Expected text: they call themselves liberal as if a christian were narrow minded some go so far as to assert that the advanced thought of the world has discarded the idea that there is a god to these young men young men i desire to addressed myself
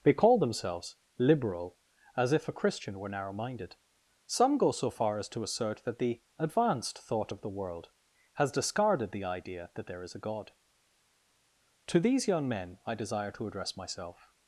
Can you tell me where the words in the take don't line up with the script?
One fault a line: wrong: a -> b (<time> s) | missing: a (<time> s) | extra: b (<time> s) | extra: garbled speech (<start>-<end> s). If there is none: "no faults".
missing: young men (12.8 s)
wrong: addressed -> address (13.5 s)